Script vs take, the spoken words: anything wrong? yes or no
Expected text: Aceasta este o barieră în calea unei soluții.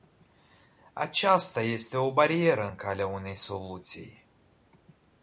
no